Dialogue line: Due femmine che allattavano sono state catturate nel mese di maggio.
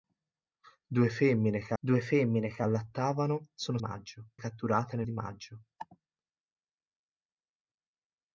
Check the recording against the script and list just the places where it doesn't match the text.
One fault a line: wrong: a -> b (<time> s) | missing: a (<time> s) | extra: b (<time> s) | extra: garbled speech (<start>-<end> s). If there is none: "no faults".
extra: due femmine che (1.8 s)
wrong: state -> maggio (3.8 s)
missing: mese (5.1 s)